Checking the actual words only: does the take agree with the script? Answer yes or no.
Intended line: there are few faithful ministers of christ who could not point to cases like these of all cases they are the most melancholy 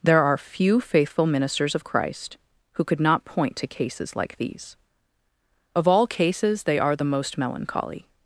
yes